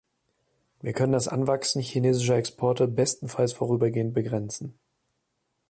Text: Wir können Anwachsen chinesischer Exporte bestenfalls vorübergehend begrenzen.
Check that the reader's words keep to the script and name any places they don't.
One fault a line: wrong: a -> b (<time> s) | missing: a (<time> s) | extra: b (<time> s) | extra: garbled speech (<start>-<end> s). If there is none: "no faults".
extra: das (1.1 s)